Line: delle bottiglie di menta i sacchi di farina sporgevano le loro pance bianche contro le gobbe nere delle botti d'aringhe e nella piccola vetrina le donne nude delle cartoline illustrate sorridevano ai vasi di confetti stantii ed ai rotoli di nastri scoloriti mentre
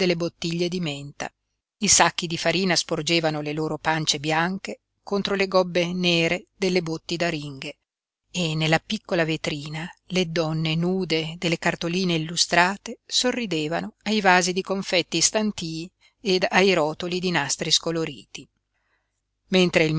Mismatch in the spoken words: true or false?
false